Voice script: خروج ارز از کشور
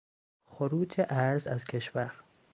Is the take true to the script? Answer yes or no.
yes